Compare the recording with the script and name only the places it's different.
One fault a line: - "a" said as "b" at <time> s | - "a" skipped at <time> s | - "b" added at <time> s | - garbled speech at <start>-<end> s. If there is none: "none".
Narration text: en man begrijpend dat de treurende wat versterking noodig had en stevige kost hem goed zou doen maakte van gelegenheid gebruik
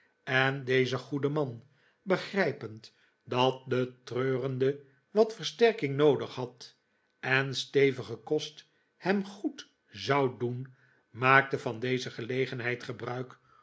- "deze goede" added at 0.6 s
- "deze" added at 11.8 s